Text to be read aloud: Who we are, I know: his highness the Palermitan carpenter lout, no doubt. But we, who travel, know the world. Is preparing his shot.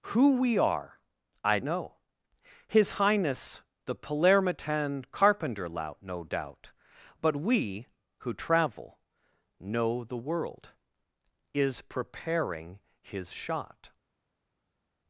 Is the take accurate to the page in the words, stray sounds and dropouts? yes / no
yes